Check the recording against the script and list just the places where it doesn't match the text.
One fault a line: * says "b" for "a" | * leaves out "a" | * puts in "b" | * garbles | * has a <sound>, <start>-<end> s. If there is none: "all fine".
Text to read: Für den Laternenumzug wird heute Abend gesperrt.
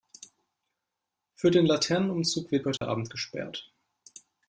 * has a dropout, 2.8-2.8 s